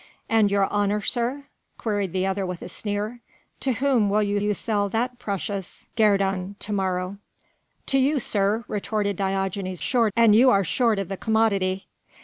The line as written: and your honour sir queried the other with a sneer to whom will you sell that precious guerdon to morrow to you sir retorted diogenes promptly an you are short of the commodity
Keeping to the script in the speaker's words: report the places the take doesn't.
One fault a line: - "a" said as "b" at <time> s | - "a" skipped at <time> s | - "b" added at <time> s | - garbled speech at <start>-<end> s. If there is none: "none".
- "you" added at 4.4 s
- "promptly" said as "short" at 9.8 s